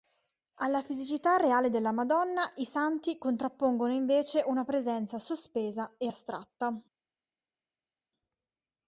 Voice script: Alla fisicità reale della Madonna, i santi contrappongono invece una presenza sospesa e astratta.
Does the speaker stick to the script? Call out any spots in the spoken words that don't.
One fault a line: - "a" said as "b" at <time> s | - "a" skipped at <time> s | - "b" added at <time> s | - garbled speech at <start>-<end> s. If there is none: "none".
none